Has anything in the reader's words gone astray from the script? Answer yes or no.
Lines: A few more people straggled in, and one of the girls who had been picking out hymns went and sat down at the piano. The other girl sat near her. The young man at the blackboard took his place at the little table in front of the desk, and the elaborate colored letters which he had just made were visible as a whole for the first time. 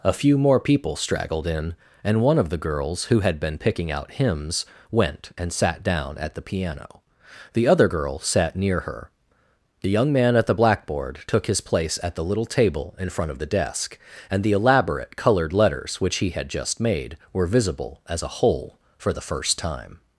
no